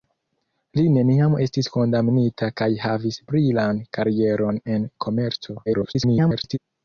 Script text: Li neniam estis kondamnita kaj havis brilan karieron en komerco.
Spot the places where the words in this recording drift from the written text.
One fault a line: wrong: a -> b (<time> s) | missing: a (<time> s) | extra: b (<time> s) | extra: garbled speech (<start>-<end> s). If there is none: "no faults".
extra: garbled speech (5.7-6.6 s)